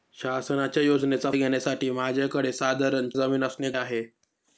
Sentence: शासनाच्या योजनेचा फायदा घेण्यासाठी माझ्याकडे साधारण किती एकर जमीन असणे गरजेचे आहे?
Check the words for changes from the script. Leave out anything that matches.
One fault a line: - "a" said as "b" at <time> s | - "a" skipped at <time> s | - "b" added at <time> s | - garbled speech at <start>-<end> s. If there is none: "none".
- "फायदा" skipped at 1.3 s
- "किती एकर" skipped at 3.1 s
- "गरजेचे" skipped at 3.7 s